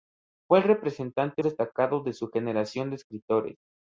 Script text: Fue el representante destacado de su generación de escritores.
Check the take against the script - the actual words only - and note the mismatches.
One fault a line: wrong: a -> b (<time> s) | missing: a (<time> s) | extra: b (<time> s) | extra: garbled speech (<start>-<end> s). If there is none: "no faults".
no faults